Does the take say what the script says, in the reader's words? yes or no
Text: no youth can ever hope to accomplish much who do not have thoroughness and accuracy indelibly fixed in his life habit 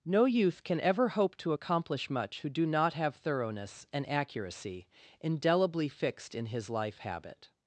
yes